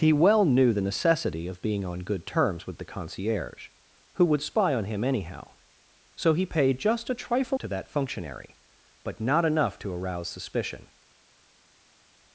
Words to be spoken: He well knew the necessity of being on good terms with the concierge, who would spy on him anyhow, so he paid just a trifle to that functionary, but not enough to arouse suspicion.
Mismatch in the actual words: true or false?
false